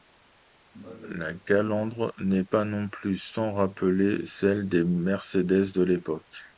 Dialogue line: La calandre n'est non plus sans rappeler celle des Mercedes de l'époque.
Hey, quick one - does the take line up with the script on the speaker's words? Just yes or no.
no